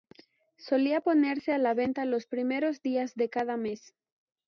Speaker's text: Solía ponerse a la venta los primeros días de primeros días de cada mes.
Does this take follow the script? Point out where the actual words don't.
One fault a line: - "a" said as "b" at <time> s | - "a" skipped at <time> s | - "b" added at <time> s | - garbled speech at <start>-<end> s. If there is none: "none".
- "primeros días de" skipped at 3.3 s